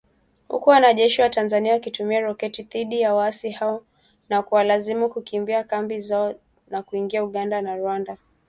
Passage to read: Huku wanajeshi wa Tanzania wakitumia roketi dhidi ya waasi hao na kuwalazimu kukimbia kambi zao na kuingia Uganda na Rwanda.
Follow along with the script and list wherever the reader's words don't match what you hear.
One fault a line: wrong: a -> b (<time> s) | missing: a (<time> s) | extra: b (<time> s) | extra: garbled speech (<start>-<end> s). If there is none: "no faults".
no faults